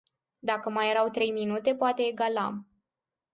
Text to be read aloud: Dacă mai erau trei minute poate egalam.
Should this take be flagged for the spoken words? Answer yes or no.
no